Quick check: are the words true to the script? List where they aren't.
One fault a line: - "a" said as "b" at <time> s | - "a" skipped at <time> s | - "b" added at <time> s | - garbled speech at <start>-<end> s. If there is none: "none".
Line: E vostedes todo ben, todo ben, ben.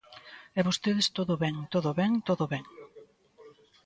- "todo" added at 2.3 s